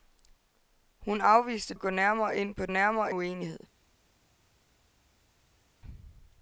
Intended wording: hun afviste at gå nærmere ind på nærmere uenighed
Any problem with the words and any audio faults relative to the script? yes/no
no